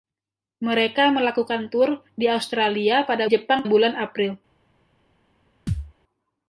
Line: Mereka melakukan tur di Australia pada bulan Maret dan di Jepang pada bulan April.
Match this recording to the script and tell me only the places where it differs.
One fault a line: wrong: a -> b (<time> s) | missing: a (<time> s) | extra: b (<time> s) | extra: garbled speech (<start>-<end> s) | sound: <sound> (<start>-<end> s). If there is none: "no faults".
missing: bulan Maret dan (3.3 s)
missing: pada (3.6 s)
sound: thud (5.7-5.9 s)